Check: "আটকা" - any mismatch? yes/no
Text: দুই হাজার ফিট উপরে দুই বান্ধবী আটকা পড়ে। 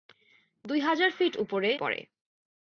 yes